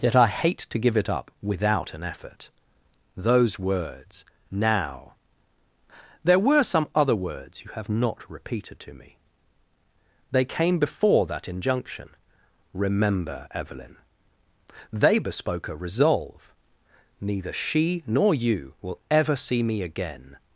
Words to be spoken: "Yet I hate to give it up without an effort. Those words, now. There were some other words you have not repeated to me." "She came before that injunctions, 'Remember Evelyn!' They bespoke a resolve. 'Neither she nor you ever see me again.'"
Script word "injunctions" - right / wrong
wrong